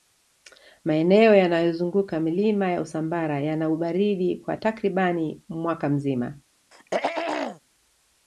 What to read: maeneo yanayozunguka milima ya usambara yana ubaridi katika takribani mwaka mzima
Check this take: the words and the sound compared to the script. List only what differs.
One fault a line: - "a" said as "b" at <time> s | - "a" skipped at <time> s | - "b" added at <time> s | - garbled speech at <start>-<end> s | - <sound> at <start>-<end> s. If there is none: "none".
- "katika" said as "kwa" at 4.4 s
- throat clearing at 6.7-7.6 s